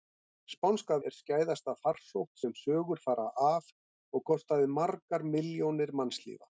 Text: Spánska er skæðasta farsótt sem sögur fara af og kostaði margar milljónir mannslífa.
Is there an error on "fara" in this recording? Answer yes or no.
no